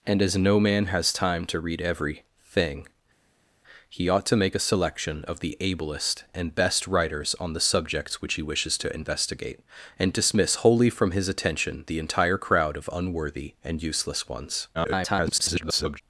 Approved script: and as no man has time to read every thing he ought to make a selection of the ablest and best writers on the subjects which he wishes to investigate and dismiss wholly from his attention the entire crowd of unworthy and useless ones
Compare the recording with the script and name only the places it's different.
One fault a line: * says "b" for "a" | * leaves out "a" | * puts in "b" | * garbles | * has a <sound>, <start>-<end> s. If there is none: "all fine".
* garbles